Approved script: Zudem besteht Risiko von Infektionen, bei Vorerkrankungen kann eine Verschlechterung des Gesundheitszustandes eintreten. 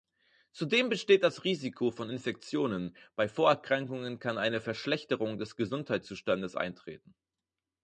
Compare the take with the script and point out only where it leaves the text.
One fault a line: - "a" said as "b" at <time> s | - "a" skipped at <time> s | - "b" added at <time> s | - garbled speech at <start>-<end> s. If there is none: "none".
- "das" added at 1.2 s